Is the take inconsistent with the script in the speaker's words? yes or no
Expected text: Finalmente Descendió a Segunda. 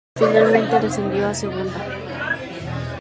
no